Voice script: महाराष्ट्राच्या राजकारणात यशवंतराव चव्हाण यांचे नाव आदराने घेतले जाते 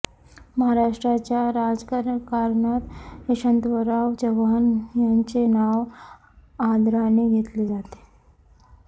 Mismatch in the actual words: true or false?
false